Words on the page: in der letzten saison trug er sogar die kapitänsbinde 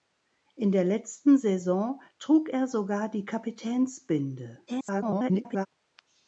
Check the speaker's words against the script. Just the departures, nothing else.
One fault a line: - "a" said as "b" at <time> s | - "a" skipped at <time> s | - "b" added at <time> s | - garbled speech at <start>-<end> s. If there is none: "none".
- garbled speech at 4.7-5.7 s